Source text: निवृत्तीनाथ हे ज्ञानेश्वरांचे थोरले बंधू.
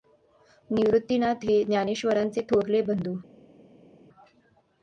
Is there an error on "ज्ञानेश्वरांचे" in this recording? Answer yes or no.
no